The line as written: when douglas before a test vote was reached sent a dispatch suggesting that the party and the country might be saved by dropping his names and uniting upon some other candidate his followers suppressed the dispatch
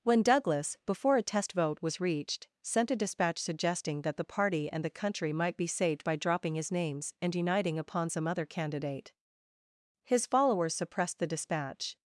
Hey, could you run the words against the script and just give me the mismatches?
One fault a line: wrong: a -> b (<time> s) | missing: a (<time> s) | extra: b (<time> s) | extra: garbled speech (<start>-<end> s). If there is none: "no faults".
no faults